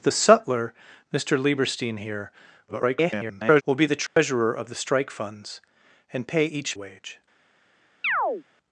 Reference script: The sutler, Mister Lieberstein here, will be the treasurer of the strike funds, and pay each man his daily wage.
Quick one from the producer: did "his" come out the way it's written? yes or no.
no